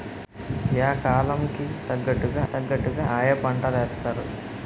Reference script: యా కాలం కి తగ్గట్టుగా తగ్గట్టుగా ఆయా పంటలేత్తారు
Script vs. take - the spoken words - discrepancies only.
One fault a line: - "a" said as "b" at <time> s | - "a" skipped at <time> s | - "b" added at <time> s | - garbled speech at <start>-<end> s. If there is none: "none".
none